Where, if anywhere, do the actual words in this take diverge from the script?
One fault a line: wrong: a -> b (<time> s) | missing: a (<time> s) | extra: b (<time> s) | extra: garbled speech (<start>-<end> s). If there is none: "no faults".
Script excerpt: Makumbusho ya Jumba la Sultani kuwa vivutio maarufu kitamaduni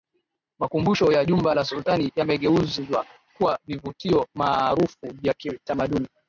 extra: yamegeuzwa (2.2 s)
extra: vya (5.2 s)